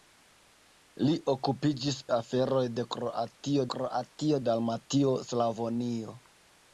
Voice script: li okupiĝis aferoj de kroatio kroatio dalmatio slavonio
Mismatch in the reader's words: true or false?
false